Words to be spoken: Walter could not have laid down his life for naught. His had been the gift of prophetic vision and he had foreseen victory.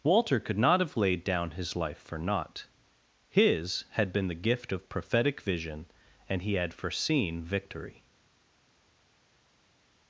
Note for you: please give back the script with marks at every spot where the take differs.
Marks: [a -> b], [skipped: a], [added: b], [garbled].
Walter could not have laid down his life for naught. His had been the gift of prophetic vision and he had foreseen victory.